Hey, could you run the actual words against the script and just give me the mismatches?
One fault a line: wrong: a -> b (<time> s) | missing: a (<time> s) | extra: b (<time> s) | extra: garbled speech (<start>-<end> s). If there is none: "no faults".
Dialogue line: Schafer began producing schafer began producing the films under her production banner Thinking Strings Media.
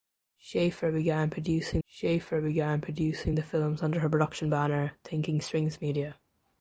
no faults